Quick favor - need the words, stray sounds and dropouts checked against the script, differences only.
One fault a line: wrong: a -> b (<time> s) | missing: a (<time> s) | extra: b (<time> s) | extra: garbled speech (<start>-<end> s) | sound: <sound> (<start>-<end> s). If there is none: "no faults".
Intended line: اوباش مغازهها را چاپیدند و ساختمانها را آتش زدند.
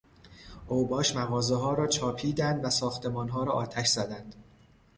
no faults